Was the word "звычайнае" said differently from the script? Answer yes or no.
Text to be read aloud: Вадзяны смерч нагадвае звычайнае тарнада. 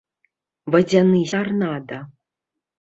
yes